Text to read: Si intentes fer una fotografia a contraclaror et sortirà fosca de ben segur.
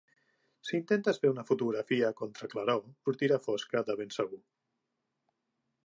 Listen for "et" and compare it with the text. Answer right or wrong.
wrong